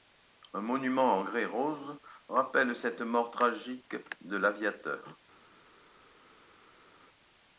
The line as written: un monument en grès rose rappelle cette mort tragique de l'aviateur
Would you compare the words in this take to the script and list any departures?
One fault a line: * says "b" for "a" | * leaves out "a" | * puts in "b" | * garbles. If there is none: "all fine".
all fine